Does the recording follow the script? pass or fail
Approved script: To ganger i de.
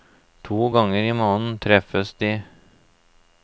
fail